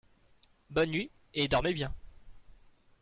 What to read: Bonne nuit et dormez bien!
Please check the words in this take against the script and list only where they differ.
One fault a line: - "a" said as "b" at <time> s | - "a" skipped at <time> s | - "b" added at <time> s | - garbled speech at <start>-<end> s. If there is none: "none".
none